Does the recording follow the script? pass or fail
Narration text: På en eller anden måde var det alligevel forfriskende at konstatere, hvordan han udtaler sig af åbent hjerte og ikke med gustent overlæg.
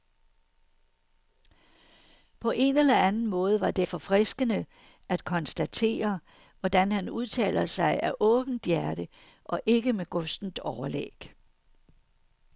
fail